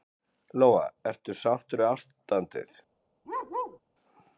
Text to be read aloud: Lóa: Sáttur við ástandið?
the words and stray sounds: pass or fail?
fail